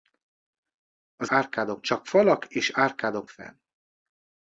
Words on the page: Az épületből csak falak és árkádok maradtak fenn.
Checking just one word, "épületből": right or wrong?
wrong